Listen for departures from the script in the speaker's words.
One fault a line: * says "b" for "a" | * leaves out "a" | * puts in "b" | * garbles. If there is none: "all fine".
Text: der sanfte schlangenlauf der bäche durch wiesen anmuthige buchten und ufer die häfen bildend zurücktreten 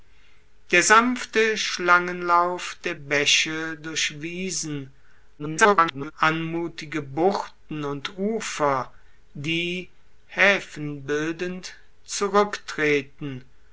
* garbles